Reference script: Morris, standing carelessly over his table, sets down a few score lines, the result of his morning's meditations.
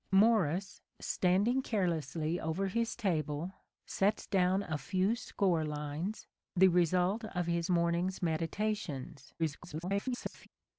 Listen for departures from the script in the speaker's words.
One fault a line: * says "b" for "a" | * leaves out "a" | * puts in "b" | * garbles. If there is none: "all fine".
* garbles